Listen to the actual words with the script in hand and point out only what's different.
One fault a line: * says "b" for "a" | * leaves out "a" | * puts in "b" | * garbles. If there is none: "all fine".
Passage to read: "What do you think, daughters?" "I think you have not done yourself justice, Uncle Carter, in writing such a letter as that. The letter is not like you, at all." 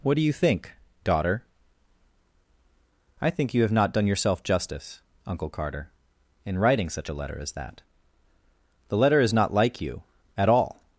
* says "daughter" for "daughters"